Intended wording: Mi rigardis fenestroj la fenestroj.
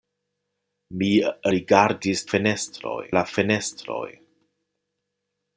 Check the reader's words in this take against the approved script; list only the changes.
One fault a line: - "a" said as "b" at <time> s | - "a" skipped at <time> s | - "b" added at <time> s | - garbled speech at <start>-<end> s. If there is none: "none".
none